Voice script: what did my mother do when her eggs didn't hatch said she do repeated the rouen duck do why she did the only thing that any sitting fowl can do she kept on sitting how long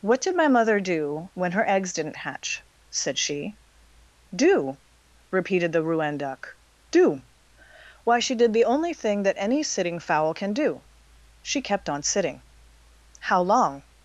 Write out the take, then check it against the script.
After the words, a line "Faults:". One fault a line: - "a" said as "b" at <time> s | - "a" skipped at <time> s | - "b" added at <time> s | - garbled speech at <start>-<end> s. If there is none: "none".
what did my mother do when her eggs didn't hatch said she do repeated the rouen duck do why she did the only thing that any sitting fowl can do she kept on sitting how long
Faults:
none